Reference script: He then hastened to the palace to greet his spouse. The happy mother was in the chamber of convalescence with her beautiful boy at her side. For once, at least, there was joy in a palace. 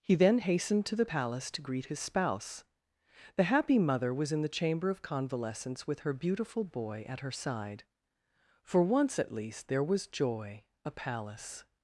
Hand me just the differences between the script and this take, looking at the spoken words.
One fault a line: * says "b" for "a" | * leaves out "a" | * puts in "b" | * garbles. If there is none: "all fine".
* leaves out "in"